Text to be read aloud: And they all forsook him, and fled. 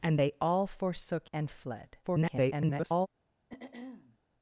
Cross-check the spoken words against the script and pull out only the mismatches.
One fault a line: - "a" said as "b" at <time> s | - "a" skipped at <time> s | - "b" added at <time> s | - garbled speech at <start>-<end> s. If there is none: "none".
- "him" skipped at 1.3 s
- garbled speech at 2.0-3.1 s